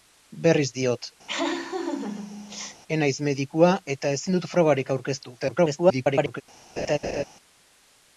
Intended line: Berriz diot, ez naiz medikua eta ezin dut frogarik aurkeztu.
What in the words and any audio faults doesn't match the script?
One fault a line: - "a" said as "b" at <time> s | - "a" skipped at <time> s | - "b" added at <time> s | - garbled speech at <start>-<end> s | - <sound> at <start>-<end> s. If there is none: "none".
- laugh at 1.3-2.8 s
- garbled speech at 5.4-6.4 s
- laugh at 6.8-7.2 s